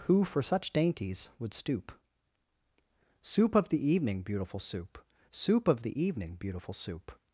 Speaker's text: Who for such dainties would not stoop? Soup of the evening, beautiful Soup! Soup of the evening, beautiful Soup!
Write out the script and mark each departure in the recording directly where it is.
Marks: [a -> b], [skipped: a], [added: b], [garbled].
Who for such dainties would [skipped: not] stoop? Soup of the evening, beautiful Soup! Soup of the evening, beautiful Soup!